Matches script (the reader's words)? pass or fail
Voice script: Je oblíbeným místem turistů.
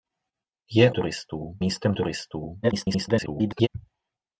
fail